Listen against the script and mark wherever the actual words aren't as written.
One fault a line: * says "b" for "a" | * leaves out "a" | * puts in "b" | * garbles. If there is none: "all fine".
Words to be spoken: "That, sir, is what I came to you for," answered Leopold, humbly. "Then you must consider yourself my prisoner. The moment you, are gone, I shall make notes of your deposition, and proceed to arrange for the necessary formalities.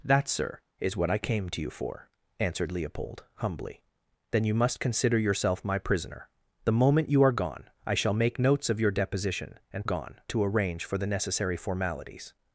* says "gone" for "proceed"